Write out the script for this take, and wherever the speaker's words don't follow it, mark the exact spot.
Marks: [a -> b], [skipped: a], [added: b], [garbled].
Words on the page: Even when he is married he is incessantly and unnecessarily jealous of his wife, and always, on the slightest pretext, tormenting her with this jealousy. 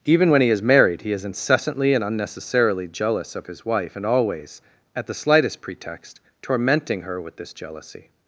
Even when he is married he is incessantly and unnecessarily jealous of his wife, and always, [on -> at] the slightest pretext, tormenting her with this jealousy.